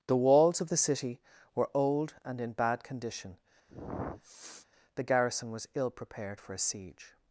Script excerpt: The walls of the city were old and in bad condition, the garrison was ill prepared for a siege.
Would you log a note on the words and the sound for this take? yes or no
yes